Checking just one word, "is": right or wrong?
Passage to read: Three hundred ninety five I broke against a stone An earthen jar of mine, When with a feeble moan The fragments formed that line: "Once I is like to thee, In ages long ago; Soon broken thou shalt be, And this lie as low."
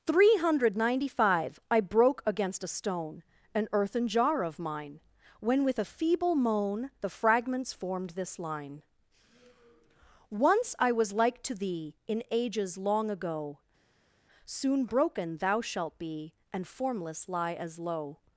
wrong